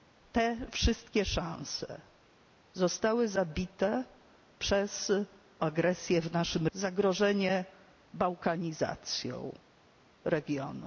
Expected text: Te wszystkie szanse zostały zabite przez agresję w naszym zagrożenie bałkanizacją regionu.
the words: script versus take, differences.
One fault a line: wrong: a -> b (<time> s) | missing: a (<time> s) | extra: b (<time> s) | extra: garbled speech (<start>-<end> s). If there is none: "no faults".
no faults